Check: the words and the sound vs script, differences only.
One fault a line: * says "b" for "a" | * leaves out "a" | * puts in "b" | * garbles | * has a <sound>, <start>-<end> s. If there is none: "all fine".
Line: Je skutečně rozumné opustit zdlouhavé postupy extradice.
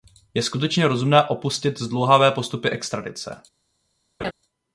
* has a laugh, 4.2-4.3 s